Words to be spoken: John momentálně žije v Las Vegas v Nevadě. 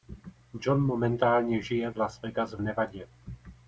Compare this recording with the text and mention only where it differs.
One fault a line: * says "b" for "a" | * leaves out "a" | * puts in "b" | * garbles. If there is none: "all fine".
all fine